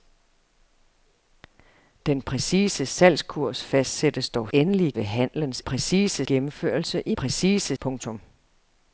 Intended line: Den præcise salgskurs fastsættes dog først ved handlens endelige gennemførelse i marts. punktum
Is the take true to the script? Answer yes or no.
no